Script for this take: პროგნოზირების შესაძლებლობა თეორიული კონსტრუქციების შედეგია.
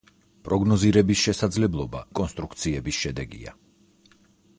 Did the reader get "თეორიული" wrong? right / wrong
wrong